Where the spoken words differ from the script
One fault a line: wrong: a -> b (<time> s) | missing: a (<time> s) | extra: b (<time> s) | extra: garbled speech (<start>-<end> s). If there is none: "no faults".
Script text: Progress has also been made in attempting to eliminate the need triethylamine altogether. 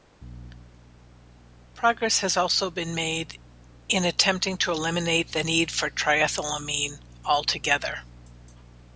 extra: for (5.7 s)